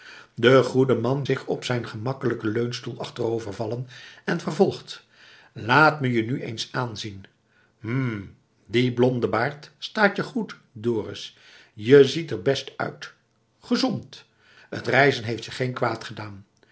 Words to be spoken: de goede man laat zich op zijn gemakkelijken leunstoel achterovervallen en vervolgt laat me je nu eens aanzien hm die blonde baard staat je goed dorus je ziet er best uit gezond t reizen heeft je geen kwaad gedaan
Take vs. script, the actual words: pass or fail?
fail